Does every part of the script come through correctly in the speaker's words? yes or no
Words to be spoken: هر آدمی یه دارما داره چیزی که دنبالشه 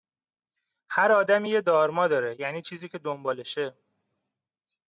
no